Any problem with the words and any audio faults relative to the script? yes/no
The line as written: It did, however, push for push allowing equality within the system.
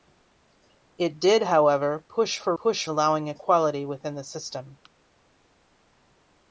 no